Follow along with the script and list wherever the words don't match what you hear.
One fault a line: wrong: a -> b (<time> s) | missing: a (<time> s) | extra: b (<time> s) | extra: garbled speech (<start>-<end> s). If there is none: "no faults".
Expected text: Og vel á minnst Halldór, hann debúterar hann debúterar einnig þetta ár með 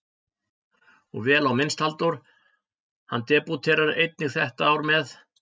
missing: hann debúterar (3.9 s)